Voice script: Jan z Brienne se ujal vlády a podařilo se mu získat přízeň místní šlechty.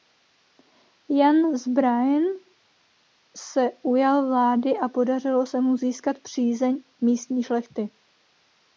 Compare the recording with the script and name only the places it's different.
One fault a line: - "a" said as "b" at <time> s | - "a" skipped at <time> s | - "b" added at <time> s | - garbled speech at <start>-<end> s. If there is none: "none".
none